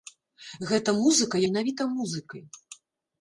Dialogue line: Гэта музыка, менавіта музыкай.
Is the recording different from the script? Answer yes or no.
no